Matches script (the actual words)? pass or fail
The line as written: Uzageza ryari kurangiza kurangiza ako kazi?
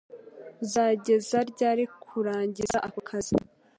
fail